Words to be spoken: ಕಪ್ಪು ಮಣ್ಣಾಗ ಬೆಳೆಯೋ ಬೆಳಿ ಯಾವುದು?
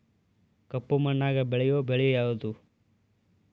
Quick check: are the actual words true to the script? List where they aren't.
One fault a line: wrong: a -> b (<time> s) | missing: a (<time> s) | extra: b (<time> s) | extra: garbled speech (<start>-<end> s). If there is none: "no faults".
no faults